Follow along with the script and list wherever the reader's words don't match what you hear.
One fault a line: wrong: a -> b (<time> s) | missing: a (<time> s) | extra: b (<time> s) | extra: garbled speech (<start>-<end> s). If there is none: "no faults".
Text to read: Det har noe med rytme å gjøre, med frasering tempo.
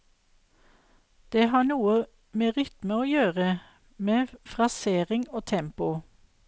extra: og (5.3 s)